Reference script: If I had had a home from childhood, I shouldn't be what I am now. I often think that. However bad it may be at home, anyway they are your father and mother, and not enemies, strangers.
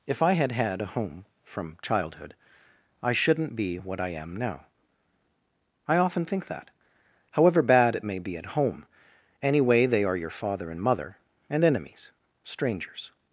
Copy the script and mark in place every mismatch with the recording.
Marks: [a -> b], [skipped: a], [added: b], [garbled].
If I had had a home from childhood, I shouldn't be what I am now. I often think that. However bad it may be at home, anyway they are your father and mother, and [skipped: not] enemies, strangers.